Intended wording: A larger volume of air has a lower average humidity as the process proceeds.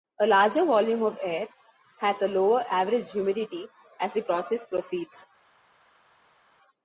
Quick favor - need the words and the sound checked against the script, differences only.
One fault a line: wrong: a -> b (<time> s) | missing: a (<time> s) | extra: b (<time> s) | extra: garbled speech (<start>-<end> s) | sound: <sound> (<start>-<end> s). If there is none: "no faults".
no faults